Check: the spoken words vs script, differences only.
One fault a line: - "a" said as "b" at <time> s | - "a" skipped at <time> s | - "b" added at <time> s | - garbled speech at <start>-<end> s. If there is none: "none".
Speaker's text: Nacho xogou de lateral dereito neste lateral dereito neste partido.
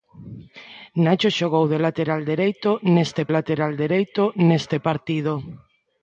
none